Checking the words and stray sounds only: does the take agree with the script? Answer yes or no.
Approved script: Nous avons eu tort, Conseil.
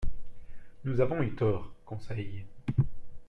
yes